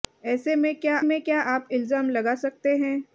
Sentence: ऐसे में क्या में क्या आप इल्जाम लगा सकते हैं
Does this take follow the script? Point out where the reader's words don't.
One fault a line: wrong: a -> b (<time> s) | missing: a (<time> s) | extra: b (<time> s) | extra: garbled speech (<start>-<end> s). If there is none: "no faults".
no faults